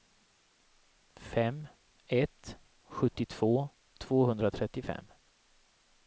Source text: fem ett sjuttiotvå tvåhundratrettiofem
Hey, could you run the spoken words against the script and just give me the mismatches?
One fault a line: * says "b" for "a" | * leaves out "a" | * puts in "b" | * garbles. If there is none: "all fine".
all fine